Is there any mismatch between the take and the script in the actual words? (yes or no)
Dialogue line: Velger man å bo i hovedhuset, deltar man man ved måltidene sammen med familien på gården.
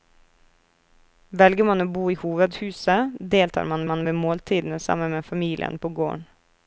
no